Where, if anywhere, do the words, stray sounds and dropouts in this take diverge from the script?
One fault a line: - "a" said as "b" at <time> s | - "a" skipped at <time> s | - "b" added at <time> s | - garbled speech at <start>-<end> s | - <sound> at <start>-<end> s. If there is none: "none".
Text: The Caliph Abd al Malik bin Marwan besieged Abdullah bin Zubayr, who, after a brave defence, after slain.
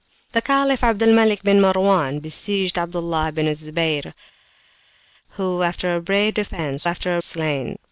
none